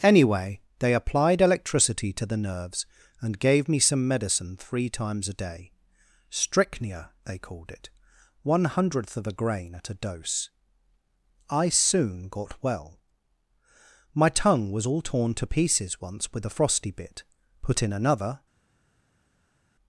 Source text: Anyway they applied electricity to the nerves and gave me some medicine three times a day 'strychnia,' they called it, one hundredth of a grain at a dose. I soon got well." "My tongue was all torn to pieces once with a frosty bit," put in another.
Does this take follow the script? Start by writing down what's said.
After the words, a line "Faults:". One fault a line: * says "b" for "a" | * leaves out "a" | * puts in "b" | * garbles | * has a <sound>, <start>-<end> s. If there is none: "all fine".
Anyway they applied electricity to the nerves and gave me some medicine three times a day 'strychnia,' they called it, one hundredth of a grain at a dose. I soon got well." "My tongue was all torn to pieces once with a frosty bit," put in another.
Faults:
all fine